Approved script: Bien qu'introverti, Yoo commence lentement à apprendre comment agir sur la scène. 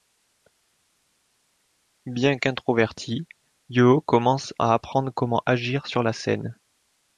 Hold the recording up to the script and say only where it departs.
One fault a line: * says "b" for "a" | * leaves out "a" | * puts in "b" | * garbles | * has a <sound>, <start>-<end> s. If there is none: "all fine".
* leaves out "lentement"